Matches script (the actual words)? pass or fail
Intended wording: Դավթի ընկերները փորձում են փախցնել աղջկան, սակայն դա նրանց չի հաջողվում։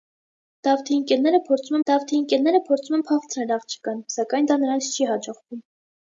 fail